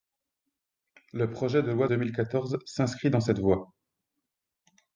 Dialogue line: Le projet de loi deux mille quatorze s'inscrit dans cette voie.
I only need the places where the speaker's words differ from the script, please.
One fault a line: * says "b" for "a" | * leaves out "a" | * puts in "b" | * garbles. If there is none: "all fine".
all fine